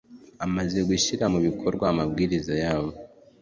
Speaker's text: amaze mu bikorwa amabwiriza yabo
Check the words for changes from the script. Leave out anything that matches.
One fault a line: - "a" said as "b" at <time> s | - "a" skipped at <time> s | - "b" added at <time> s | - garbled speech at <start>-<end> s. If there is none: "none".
- "gushyira" added at 0.9 s